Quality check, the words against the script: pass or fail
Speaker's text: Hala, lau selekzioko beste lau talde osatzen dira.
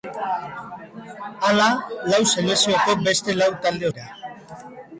fail